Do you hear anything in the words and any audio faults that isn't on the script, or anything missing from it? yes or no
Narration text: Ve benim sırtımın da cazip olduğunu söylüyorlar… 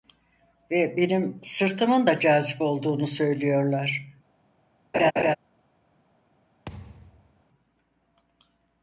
yes